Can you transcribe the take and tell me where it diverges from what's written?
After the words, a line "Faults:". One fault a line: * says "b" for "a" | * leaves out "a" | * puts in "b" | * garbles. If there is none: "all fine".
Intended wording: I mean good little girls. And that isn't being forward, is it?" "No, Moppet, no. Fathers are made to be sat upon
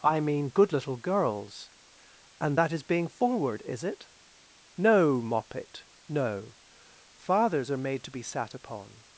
I mean good little girls. And that is being forward, is it?" "No, Moppet, no. Fathers are made to be sat upon
Faults:
* says "is" for "isn't"